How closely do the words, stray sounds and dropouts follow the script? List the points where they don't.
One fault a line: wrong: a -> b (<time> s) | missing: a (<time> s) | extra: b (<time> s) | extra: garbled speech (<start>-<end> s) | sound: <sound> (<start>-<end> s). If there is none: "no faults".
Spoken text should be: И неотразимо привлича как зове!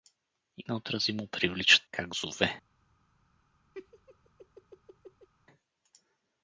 sound: laugh (3.7-5.3 s)